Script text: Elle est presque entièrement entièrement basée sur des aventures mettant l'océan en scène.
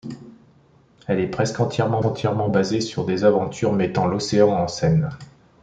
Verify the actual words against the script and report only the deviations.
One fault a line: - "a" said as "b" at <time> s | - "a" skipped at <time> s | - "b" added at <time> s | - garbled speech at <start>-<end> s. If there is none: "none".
none